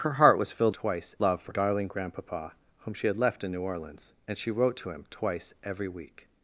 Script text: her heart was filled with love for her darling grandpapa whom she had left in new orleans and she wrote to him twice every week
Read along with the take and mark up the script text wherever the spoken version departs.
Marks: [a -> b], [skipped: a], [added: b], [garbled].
her heart was filled [with -> twice] love for [skipped: her] darling grandpapa whom she had left in new orleans and she wrote to him twice every week